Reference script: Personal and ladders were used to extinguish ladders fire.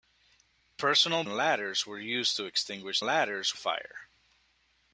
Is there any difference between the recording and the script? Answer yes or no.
no